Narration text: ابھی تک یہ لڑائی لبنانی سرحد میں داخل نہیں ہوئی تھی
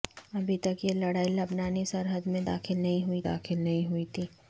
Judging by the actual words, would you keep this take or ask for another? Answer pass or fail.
fail